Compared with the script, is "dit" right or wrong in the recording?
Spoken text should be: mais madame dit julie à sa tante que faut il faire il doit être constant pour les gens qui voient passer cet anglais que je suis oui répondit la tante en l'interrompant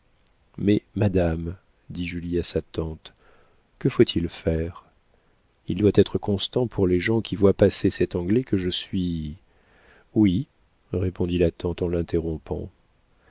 right